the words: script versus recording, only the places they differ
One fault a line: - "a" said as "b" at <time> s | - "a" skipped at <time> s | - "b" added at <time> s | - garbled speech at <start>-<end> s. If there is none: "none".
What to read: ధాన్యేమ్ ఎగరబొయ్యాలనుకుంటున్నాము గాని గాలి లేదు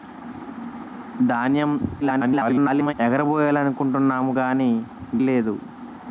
- garbled speech at 2.0-2.9 s
- "గాలి" skipped at 4.7 s